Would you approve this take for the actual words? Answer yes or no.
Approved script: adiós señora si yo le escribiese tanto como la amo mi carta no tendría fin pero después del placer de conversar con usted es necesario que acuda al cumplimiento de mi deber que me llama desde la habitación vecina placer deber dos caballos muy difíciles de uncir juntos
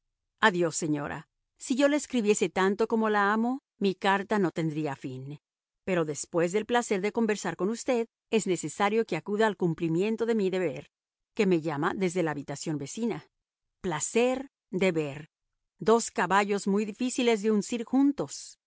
yes